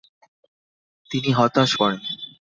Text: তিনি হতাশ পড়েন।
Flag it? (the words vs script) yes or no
no